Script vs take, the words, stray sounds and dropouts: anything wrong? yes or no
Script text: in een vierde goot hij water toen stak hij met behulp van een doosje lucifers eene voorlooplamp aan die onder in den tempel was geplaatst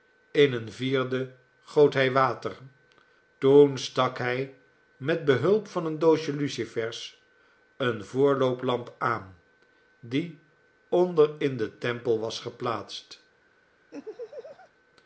yes